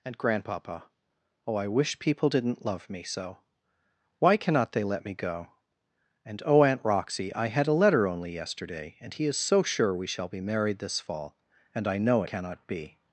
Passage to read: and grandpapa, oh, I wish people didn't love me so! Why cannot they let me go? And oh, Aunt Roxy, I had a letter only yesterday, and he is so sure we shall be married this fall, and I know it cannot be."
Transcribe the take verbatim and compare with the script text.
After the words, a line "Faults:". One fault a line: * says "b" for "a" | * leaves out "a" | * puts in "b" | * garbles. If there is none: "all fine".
and grandpapa, oh, I wish people didn't love me so! Why cannot they let me go? And oh, Aunt Roxy, I had a letter only yesterday, and he is so sure we shall be married this fall, and I know cannot be."
Faults:
* leaves out "it"